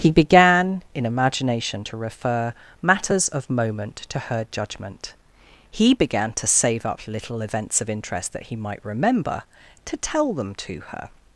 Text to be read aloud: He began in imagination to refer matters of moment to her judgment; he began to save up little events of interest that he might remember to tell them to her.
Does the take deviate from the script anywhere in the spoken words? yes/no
no